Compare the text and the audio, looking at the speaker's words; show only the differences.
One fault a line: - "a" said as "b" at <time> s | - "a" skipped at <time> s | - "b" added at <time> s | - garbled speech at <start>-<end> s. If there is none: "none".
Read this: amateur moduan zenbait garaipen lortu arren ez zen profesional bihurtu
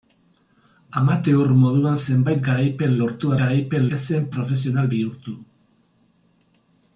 - "arren" said as "garaipen" at 3.4 s